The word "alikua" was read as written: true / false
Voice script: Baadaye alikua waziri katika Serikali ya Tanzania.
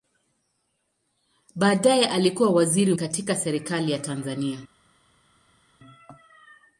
true